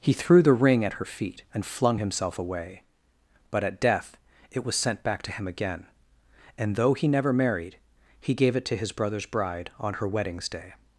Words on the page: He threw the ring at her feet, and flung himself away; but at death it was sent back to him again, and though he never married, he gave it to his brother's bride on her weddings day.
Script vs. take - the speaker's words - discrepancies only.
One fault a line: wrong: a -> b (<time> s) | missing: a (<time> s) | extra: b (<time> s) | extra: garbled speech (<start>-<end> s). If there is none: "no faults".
no faults